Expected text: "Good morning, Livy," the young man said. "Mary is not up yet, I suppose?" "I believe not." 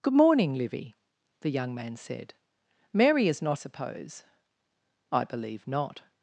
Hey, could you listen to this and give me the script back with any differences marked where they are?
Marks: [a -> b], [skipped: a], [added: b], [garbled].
"Good morning, Livy," the young man said. "Mary is not [skipped: up yet, I] suppose?" "I believe not."